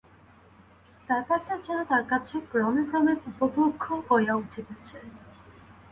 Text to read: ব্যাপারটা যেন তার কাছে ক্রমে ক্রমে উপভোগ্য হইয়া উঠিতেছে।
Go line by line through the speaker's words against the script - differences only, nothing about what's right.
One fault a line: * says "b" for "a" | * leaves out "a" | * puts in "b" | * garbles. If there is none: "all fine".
all fine